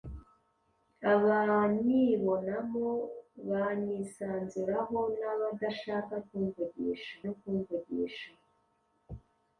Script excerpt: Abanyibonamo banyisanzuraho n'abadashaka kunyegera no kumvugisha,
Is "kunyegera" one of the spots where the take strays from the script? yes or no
yes